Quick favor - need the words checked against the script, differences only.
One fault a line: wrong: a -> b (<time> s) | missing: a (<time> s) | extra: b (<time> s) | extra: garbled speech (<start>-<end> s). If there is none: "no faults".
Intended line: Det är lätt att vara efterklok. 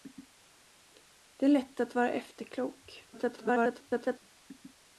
extra: garbled speech (3.1-4.2 s)